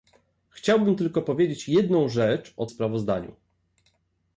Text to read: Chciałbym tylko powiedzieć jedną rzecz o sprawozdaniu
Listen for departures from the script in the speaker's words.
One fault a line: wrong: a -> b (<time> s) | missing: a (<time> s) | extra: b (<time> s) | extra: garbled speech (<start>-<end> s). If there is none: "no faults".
no faults